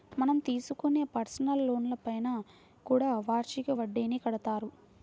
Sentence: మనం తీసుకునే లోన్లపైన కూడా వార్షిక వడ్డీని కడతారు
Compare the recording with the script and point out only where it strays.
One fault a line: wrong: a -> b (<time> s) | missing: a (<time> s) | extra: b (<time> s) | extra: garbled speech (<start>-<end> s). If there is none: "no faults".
extra: పర్సనల్ (1.1 s)